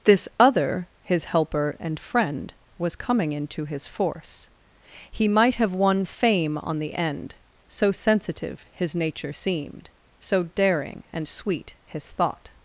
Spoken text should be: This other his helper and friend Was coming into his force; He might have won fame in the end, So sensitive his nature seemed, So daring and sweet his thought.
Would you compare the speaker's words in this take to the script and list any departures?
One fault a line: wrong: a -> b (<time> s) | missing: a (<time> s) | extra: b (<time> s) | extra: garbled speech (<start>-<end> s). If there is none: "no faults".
wrong: in -> on (6.6 s)